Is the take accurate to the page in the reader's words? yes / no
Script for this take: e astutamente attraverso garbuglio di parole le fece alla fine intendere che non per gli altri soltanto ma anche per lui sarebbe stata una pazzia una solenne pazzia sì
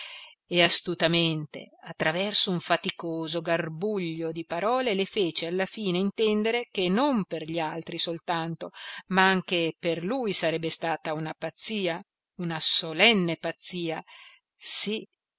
no